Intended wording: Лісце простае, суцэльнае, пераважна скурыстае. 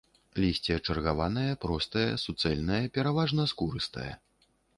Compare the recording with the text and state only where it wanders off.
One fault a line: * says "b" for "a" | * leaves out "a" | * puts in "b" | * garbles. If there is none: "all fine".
* puts in "чаргаванае"